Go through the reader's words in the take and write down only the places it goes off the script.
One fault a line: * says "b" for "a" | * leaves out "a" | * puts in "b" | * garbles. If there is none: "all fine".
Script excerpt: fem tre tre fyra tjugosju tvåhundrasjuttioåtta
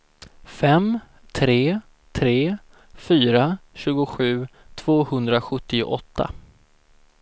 all fine